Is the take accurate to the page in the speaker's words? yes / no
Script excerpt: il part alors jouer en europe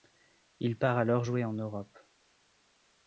yes